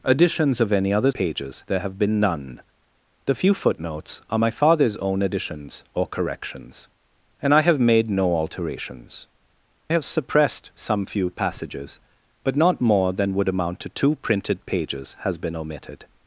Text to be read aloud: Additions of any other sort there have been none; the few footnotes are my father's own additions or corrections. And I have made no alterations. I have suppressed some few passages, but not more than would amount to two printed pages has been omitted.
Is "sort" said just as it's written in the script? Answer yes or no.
no